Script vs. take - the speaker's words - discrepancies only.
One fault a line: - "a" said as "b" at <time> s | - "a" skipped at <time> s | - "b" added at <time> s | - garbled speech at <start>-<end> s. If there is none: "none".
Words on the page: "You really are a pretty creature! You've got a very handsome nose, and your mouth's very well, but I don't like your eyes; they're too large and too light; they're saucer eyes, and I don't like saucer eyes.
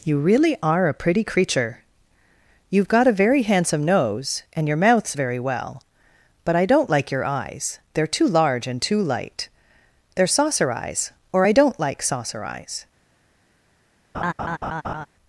- "and" said as "or" at 11.3 s